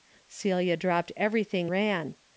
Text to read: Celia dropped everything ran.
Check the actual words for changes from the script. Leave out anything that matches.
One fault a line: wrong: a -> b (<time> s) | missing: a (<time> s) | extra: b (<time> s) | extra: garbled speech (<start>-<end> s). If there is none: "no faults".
no faults